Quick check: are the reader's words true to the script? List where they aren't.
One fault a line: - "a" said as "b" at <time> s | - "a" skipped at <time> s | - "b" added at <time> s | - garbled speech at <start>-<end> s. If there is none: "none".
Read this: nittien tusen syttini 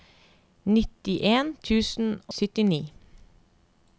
none